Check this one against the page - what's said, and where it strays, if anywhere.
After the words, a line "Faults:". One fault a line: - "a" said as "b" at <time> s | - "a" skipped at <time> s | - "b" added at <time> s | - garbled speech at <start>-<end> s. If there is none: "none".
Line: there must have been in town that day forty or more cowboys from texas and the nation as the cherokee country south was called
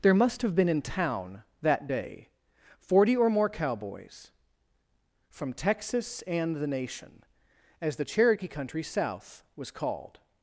there must have been in town that day forty or more cowboys from texas and the nation as the cherokee country south was called
Faults:
none